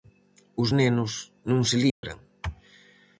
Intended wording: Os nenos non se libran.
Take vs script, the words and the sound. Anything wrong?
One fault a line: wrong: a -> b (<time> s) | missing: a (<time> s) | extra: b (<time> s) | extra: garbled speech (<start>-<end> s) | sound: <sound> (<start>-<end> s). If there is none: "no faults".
sound: dropout (1.9-2.0 s)